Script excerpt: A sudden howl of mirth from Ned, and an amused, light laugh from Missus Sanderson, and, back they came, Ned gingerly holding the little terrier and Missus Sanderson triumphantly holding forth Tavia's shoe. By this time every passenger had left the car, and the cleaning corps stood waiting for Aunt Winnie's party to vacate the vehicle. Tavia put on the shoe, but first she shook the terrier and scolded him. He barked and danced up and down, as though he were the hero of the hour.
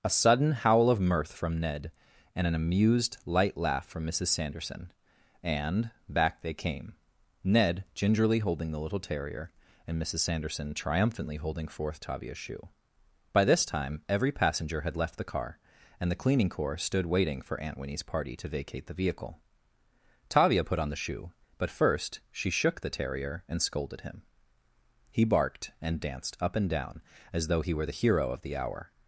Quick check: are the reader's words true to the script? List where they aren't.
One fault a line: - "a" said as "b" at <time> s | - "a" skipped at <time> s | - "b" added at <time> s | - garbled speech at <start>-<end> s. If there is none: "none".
none